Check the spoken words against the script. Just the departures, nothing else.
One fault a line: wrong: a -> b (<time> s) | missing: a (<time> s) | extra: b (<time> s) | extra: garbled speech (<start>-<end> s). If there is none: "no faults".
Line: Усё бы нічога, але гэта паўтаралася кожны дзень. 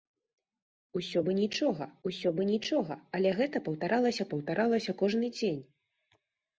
extra: усё бы нічога (2.1 s)
extra: паўтаралася (4.3 s)